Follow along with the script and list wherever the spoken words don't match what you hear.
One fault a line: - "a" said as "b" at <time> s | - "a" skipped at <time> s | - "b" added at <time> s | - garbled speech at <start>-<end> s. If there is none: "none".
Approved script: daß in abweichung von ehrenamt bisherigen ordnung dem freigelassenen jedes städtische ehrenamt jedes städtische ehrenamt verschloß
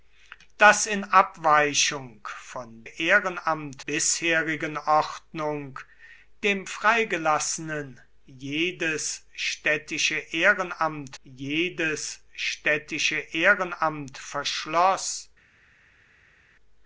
none